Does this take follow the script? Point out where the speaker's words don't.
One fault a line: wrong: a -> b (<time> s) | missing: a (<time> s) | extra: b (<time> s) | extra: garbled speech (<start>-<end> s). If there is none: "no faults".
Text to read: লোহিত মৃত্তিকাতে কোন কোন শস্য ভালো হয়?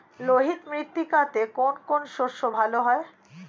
no faults